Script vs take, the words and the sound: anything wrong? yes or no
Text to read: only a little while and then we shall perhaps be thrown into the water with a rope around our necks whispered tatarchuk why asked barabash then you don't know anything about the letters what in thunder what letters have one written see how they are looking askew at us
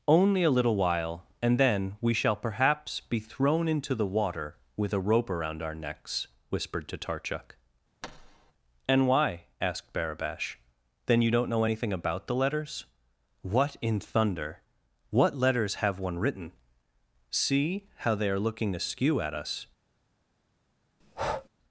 yes